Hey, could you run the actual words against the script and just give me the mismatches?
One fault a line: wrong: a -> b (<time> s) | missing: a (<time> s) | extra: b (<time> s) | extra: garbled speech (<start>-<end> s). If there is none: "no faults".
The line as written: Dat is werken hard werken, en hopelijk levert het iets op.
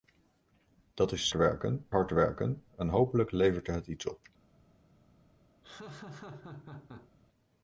no faults